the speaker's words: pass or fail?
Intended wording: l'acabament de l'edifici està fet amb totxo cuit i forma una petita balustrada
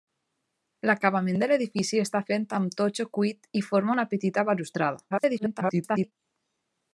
fail